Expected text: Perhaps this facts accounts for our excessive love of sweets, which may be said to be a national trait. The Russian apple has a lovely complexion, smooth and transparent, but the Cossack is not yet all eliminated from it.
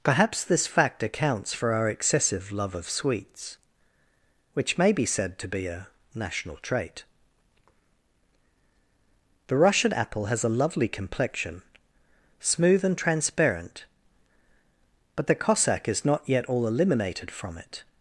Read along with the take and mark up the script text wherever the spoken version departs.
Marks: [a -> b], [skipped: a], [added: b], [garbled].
Perhaps this [facts -> fact] accounts for our excessive love of sweets, which may be said to be a national trait. The Russian apple has a lovely complexion, smooth and transparent, but the Cossack is not yet all eliminated from it.